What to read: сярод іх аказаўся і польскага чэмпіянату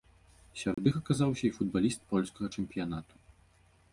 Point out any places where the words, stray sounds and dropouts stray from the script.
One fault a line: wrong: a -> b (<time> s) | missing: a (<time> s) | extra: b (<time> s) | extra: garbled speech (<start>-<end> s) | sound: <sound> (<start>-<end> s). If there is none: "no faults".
sound: dropout (0.7-0.8 s)
extra: футбаліст (1.6 s)